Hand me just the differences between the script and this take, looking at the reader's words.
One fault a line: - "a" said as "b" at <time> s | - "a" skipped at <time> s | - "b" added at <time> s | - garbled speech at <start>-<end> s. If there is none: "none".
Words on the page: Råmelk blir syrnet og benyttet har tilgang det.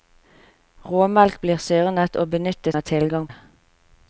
none